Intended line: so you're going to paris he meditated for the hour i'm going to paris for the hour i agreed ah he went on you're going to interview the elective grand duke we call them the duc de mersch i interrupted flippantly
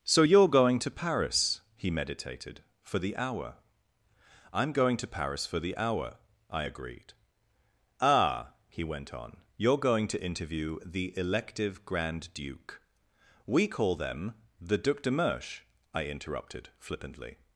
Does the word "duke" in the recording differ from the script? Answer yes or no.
no